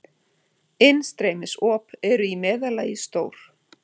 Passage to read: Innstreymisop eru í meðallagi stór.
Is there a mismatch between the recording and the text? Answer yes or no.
no